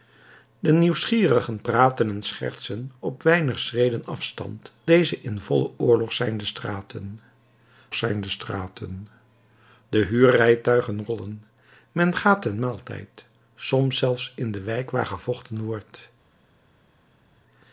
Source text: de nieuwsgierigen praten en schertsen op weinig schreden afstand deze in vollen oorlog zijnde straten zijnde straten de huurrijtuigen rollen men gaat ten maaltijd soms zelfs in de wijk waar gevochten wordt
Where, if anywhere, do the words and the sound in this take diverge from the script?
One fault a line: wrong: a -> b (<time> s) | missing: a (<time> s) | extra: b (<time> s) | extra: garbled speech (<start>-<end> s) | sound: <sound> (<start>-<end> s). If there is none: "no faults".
no faults